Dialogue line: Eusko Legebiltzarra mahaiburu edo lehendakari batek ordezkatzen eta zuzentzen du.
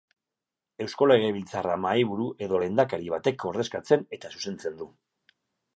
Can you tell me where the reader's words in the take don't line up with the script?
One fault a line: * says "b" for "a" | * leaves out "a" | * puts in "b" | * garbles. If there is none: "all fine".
all fine